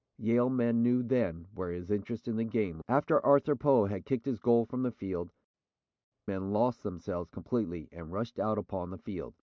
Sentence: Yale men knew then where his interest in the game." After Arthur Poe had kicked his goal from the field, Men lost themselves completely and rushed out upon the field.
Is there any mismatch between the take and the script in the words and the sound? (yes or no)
no